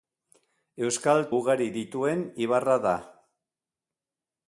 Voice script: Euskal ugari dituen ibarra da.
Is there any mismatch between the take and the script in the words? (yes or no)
no